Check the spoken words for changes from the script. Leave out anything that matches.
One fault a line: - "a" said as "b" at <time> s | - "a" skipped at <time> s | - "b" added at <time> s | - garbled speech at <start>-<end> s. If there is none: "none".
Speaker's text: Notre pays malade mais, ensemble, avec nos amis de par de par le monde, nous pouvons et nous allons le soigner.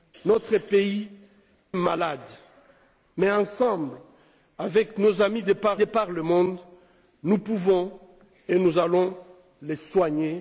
none